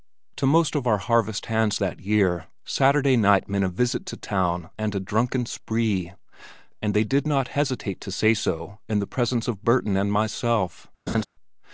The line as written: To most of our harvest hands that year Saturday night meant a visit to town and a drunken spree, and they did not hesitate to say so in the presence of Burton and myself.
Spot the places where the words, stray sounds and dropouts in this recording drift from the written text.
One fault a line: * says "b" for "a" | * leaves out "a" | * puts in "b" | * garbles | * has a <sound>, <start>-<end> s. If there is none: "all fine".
* has a laugh, 11.1-11.2 s